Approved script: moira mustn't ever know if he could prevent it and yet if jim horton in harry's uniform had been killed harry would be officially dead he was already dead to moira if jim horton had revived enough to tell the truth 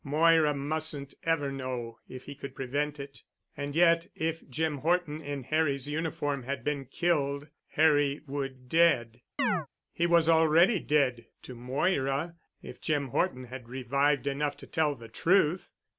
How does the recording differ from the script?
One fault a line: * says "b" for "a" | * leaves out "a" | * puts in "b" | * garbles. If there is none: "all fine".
* leaves out "be officially"